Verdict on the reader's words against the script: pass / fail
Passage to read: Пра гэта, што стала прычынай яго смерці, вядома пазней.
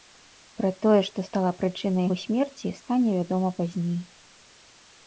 fail